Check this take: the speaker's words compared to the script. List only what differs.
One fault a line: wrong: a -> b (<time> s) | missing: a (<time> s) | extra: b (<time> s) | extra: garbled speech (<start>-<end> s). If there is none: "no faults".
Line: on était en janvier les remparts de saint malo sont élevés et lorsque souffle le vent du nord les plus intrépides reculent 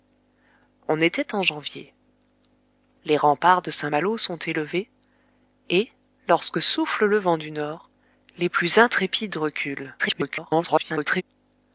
extra: garbled speech (10.0-11.2 s)